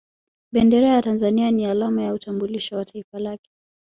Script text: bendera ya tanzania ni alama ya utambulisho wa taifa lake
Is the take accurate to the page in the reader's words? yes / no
yes